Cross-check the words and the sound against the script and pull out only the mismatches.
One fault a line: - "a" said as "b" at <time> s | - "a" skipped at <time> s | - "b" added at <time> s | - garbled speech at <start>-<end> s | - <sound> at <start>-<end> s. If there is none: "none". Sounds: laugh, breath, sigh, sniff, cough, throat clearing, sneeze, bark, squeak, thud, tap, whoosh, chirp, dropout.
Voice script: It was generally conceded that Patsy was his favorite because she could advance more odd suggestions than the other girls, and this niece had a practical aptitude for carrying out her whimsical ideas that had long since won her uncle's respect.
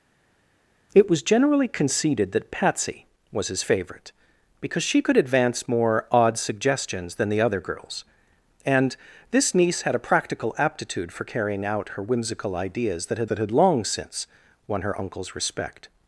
- "that had" added at 13.3 s